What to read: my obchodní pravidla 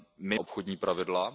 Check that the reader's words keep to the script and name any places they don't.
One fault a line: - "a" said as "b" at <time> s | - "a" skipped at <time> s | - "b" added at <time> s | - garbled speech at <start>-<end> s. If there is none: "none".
none